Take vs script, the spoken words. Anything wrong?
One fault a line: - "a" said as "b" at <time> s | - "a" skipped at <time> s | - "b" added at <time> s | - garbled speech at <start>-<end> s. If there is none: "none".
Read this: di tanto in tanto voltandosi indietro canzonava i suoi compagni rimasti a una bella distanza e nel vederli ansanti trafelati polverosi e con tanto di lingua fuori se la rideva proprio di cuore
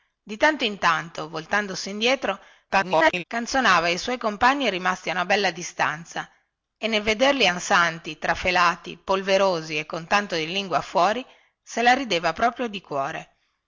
- garbled speech at 2.7-3.2 s